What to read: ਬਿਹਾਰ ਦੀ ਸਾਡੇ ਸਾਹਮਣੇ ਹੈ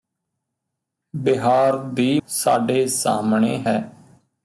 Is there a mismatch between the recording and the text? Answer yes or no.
no